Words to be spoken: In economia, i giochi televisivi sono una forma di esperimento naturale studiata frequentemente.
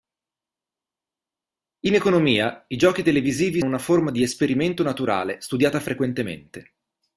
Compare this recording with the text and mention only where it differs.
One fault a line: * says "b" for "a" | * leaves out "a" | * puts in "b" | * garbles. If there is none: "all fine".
* leaves out "sono"